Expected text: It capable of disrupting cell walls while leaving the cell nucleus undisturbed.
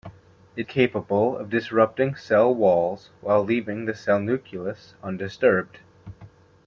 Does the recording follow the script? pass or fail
pass